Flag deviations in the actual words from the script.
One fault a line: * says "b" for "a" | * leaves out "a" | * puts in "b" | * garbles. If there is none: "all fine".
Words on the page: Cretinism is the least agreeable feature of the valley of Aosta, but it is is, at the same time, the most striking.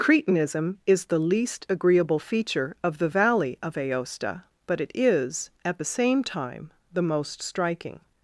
* leaves out "is"